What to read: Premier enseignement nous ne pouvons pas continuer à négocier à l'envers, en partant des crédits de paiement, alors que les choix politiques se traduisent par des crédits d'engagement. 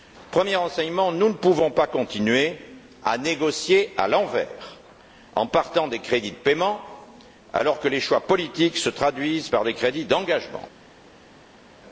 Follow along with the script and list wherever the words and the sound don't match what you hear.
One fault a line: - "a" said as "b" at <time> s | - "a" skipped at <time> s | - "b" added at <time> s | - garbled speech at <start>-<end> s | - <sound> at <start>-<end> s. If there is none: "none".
none